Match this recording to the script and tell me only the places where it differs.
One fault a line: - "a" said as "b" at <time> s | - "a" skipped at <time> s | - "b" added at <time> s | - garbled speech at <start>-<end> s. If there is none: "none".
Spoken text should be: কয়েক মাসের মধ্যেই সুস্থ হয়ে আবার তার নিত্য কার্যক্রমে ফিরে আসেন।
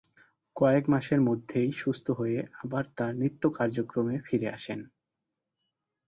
none